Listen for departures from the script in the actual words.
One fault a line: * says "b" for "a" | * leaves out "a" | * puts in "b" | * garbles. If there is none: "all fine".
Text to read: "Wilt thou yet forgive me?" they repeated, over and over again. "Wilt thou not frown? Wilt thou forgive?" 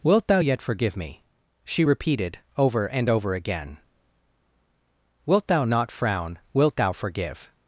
* says "she" for "they"